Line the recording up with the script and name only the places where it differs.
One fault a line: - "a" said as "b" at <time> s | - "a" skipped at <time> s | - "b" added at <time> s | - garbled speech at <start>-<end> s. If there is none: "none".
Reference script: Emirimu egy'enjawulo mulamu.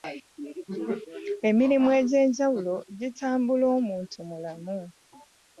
- "gitambula omuntu" added at 3.0 s